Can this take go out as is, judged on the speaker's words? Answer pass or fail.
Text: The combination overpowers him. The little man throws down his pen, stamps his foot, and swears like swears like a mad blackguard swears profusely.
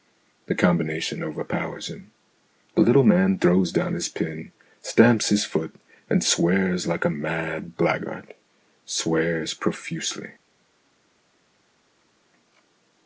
fail